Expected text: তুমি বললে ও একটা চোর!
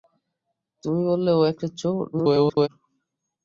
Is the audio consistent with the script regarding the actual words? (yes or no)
no